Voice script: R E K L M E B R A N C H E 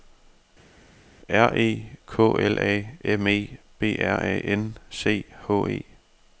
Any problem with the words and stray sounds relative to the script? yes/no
yes